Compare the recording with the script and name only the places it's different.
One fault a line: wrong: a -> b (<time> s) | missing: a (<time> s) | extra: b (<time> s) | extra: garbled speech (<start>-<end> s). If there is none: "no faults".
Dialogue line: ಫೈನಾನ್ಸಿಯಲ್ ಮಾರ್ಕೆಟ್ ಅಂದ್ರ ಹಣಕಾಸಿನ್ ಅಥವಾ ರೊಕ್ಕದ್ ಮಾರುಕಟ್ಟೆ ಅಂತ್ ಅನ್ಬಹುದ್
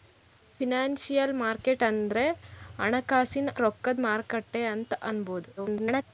missing: ಅಥವಾ (3.5 s)
extra: garbled speech (5.6-6.1 s)